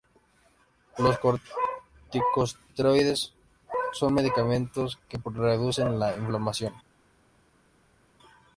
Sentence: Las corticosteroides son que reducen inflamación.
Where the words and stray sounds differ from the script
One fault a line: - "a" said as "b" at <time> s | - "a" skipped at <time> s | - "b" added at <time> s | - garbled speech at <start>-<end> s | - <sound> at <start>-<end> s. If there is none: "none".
- "Las" said as "Los" at 1.0 s
- "medicamentos" added at 4.1 s
- "la" added at 6.0 s